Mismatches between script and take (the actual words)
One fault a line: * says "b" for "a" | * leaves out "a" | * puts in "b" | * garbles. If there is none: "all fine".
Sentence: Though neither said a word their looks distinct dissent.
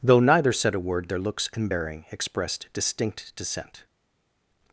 * puts in "and bearing expressed"